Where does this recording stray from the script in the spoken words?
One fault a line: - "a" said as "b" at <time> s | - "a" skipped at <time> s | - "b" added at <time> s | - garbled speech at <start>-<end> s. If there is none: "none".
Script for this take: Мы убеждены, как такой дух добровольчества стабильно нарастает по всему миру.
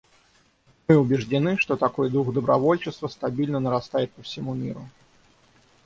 - "как" said as "что" at 1.6 s